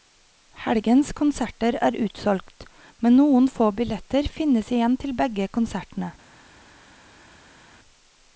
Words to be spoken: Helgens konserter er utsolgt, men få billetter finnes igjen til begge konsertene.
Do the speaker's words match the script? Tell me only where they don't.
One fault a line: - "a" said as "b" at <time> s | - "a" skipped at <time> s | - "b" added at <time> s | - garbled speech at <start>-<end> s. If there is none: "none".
- "noen" added at 3.2 s